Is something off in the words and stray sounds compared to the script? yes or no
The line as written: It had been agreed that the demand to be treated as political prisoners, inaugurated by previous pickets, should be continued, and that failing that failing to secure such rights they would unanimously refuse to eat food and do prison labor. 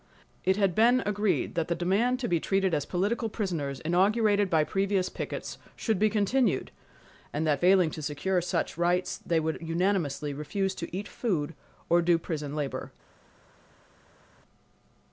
yes